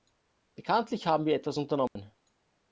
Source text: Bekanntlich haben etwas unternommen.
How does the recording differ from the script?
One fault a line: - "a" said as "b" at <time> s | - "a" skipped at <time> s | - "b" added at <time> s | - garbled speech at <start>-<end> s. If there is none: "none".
- "wir" added at 1.2 s